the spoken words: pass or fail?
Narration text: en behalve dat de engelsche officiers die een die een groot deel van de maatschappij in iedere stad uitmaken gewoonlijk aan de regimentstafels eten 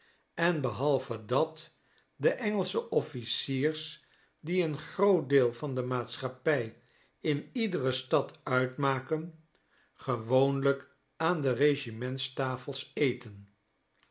fail